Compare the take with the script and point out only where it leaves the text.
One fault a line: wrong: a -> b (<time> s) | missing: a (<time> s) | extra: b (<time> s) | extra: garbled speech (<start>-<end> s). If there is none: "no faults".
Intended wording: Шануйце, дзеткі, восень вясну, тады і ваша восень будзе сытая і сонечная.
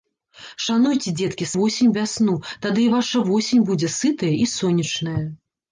no faults